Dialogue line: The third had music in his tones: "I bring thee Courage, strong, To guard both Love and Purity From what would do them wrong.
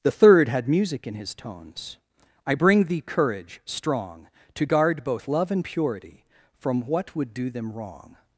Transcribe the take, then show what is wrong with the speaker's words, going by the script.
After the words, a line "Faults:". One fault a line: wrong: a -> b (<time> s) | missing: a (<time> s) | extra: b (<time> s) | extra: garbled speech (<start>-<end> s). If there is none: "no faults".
The third had music in his tones: "I bring thee Courage, strong, To guard both Love and Purity From what would do them wrong.
Faults:
no faults